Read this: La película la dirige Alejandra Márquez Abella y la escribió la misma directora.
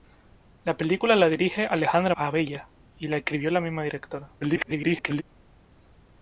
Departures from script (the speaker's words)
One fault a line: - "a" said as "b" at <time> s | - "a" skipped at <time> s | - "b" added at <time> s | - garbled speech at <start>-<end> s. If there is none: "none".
- "Márquez" skipped at 2.1 s
- garbled speech at 4.4-5.2 s